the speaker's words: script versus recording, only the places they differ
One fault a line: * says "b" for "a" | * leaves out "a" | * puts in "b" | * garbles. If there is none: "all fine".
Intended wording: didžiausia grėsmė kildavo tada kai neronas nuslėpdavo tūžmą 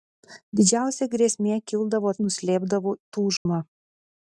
* leaves out "tada kai neronas"